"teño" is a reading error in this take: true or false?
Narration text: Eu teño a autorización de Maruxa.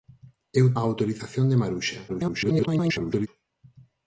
true